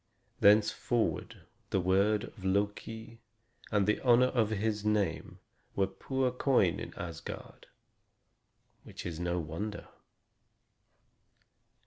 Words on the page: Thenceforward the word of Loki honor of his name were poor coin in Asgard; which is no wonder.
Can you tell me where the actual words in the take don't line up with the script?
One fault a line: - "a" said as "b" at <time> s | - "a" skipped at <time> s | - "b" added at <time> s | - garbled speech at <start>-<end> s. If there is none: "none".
- "and the" added at 3.7 s